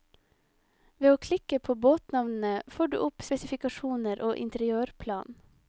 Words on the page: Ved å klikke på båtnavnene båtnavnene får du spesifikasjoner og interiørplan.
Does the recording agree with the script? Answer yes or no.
no